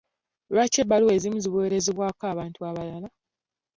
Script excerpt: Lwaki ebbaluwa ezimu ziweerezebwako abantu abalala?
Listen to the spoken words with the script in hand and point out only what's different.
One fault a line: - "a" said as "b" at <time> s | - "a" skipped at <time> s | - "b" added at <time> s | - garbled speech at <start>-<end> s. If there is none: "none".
none